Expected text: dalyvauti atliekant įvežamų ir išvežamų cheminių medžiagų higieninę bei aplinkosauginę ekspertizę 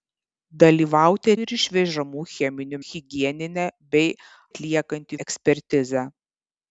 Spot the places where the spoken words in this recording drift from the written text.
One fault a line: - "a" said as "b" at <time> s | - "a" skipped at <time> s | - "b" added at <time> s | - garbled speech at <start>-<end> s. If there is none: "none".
- "atliekant įvežamų" skipped at 1.3 s
- "medžiagų" skipped at 2.8 s
- "aplinkosauginę" said as "atliekant" at 4.5 s